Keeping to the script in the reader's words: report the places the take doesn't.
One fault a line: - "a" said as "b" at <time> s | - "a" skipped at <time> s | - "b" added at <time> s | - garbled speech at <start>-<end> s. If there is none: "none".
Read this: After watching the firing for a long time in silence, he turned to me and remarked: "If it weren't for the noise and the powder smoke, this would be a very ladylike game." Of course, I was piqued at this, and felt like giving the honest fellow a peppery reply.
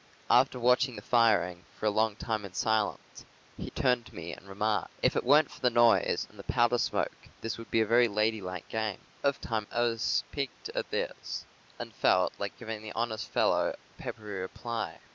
- "course" said as "time" at 9.4 s